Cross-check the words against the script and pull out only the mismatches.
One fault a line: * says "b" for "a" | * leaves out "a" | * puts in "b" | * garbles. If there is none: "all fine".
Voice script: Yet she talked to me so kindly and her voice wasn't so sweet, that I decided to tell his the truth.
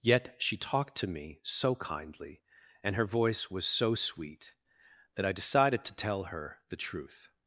* says "was" for "wasn't"
* says "her" for "his"